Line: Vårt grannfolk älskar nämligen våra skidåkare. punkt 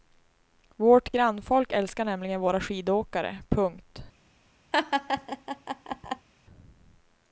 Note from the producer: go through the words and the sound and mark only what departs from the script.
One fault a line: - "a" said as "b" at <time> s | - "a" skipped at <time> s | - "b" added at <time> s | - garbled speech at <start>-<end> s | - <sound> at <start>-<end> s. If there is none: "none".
- laugh at 4.7-6.3 s